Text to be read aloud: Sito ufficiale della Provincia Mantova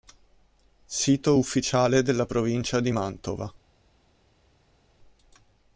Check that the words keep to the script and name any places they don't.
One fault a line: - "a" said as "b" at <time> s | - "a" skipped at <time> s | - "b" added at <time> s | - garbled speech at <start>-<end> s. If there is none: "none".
- "di" added at 2.8 s